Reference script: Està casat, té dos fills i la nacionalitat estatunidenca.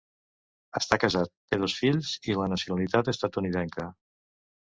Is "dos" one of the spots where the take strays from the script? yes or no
no